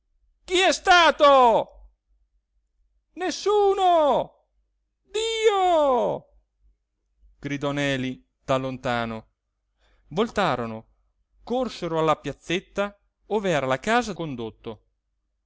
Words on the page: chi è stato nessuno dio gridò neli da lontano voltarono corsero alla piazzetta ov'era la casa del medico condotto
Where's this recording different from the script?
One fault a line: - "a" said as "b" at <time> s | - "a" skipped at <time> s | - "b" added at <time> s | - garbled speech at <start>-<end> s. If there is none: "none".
- "del medico" skipped at 14.1 s